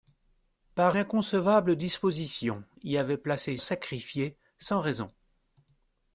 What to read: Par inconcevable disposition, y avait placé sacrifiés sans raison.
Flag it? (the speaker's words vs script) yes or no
no